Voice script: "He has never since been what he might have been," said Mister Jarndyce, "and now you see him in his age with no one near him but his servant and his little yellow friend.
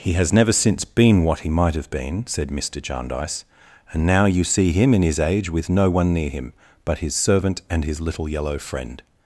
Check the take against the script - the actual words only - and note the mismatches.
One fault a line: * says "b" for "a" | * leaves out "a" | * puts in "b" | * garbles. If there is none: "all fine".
all fine